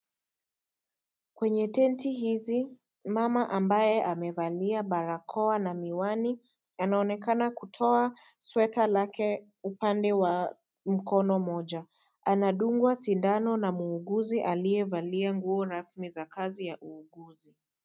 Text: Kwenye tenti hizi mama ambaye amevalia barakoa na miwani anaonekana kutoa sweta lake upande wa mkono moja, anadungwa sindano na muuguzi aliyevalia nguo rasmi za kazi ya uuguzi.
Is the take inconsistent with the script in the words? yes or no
no